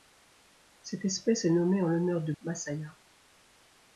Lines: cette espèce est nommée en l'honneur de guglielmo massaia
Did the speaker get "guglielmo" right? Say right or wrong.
wrong